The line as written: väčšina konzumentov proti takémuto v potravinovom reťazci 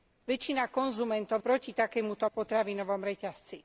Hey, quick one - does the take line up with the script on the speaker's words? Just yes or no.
yes